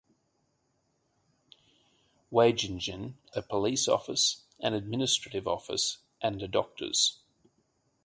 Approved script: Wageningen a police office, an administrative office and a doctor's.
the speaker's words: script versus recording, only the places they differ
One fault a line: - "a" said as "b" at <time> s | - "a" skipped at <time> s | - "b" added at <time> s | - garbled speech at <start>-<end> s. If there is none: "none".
none